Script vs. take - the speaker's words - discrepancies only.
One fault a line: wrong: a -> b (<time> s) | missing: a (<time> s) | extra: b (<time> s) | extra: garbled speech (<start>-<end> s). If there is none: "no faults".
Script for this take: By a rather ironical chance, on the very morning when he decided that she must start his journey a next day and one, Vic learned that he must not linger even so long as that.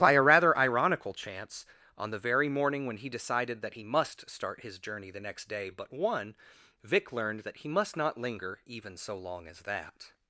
wrong: she -> he (3.7 s)
wrong: a -> the (5.1 s)
wrong: and -> but (5.7 s)